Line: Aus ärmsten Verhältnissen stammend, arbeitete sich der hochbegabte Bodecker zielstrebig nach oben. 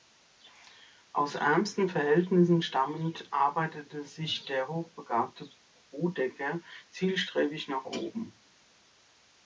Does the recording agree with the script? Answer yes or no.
yes